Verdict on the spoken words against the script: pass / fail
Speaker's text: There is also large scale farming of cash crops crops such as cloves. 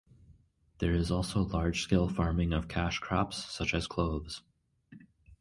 fail